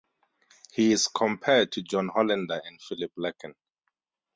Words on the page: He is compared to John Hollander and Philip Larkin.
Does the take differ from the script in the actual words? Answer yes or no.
no